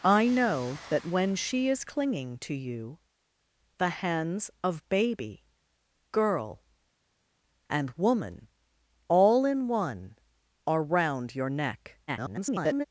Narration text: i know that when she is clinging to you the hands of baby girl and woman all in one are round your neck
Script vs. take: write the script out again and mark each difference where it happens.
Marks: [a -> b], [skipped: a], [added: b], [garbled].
i know that when she is clinging to you the hands of baby girl and woman all in one are round your neck [garbled]